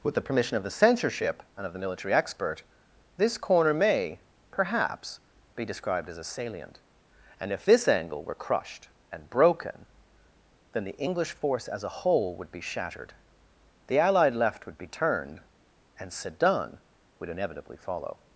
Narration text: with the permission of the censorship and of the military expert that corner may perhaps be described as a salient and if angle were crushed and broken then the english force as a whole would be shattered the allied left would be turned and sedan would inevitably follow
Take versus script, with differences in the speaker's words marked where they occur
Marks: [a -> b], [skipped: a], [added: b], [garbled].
with the permission of the censorship and of the military expert [that -> this] corner may perhaps be described as a salient and if [added: this] angle were crushed and broken then the english force as a whole would be shattered the allied left would be turned and sedan would inevitably follow